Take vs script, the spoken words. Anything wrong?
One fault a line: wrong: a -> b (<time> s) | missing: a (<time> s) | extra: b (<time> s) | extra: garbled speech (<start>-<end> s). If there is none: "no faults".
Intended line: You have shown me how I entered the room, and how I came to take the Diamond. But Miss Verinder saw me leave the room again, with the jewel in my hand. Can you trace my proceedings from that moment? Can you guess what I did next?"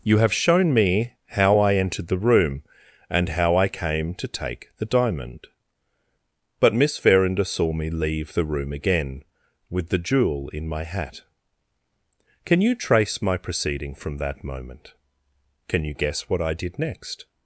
wrong: hand -> hat (10.8 s)
wrong: proceedings -> proceeding (13.4 s)